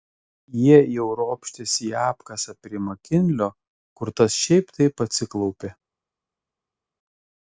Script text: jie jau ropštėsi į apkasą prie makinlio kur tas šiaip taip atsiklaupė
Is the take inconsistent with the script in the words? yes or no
no